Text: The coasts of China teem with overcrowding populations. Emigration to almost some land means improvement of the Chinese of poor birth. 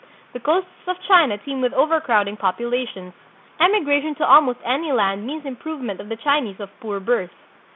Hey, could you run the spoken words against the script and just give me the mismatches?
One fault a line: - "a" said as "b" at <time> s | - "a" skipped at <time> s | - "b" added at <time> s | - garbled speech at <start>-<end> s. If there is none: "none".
- "some" said as "any" at 4.6 s